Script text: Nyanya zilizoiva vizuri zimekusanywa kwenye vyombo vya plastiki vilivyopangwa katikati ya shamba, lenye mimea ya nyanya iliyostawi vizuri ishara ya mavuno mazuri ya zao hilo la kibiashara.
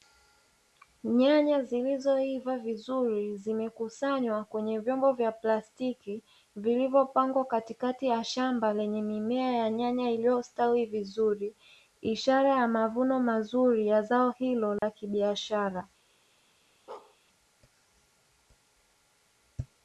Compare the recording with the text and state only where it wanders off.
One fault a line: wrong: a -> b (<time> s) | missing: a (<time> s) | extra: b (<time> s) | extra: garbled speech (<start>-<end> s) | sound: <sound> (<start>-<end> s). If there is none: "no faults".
sound: dropout (14.8-14.8 s)
sound: bark (16.9-17.2 s)